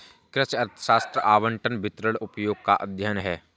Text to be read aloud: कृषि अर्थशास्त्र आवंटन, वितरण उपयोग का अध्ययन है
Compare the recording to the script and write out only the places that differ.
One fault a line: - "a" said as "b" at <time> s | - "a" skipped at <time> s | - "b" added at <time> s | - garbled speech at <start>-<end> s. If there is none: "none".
none